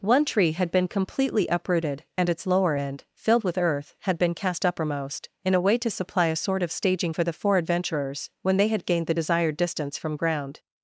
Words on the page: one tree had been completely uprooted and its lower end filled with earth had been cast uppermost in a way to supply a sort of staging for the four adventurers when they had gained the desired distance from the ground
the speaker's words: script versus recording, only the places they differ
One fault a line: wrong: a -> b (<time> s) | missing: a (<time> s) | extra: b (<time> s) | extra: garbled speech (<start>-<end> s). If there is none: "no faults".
missing: the (10.2 s)